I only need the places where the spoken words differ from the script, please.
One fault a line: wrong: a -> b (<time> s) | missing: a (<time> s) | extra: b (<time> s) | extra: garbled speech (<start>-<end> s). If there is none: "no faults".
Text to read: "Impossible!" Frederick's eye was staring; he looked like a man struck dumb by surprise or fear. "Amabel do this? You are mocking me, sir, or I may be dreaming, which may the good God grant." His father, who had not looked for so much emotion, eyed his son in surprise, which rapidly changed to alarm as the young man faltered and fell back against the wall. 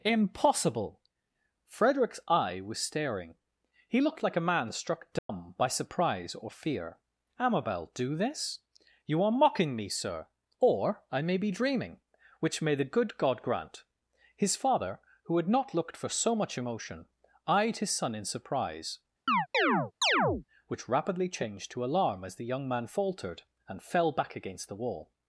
no faults